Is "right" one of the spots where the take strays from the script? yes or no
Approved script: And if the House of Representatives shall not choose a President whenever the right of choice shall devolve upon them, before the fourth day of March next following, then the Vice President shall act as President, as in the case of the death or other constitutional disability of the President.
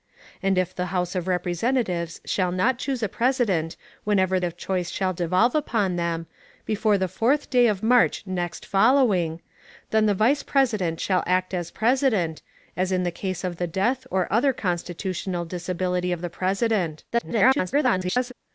yes